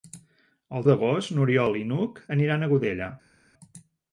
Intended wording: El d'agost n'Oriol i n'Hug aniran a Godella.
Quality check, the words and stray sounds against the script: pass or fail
pass